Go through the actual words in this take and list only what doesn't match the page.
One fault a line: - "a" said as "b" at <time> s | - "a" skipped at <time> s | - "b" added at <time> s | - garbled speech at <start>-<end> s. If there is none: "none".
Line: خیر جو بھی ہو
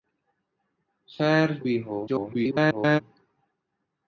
- "جو" skipped at 1.5 s
- garbled speech at 2.1-3.0 s